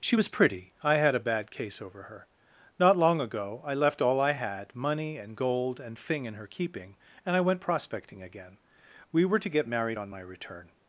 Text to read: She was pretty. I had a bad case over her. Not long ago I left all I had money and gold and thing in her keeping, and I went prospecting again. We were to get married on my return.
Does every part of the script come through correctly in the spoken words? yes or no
yes